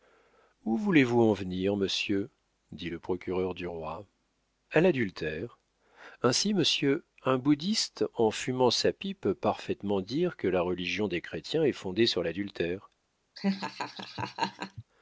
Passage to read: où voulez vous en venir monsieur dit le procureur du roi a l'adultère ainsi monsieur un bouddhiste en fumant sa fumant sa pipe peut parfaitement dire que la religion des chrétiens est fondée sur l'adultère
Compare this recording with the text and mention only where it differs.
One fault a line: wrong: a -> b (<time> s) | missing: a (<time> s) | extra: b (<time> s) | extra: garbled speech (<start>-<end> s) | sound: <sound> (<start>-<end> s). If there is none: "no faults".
missing: fumant sa (8.9 s)
sound: laugh (13.4-14.8 s)